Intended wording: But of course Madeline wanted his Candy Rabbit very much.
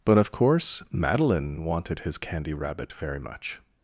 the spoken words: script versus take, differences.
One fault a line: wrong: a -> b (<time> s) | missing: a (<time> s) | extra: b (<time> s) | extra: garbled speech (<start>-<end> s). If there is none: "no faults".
no faults